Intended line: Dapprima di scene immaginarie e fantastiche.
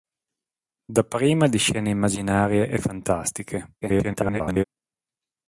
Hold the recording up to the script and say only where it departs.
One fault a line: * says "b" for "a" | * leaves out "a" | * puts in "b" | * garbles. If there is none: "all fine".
* garbles